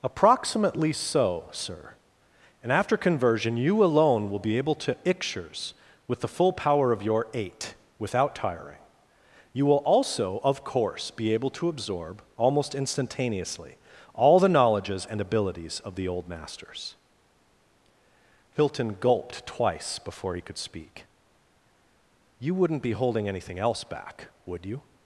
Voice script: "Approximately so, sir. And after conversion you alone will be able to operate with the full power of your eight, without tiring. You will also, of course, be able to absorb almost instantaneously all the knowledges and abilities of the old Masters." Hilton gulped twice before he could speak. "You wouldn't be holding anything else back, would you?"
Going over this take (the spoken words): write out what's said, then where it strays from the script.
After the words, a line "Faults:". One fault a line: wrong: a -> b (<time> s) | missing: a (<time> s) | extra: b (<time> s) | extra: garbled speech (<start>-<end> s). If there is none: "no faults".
"Approximately so, sir. And after conversion you alone will be able to ictures with the full power of your eight, without tiring. You will also, of course, be able to absorb almost instantaneously all the knowledges and abilities of the old Masters." Hilton gulped twice before he could speak. "You wouldn't be holding anything else back, would you?"
Faults:
wrong: operate -> ictures (5.0 s)